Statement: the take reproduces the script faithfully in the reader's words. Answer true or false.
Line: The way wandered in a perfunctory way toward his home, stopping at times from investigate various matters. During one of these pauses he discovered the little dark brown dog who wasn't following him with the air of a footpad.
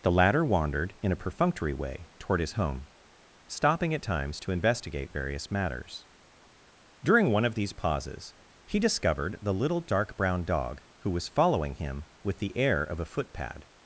false